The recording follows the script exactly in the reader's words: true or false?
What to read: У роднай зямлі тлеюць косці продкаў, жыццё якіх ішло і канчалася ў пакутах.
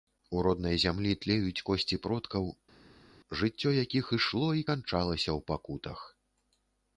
true